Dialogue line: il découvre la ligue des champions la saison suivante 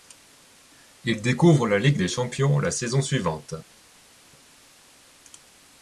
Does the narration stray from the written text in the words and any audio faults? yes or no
no